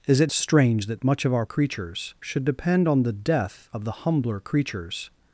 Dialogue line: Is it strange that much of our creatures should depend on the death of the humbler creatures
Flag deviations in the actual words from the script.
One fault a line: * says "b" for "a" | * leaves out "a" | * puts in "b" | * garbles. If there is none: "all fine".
all fine